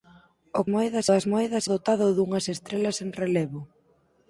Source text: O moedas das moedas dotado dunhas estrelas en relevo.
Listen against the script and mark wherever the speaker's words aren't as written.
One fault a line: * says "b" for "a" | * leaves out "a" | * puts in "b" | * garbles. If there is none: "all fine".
all fine